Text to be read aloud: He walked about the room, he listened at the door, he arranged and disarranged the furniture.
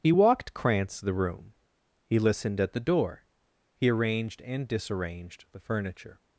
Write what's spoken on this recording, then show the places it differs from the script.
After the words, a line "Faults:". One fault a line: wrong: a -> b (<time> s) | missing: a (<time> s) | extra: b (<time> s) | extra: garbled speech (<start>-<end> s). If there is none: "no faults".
He walked krantz the room, he listened at the door, he arranged and disarranged the furniture.
Faults:
wrong: about -> krantz (0.5 s)